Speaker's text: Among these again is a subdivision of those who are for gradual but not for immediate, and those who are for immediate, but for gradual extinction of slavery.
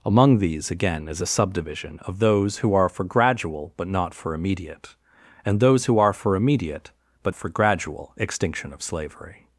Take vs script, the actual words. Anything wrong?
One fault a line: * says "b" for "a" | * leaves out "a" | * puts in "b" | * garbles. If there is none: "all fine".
all fine